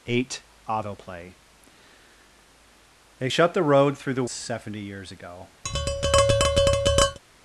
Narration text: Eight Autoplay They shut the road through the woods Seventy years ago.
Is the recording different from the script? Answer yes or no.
yes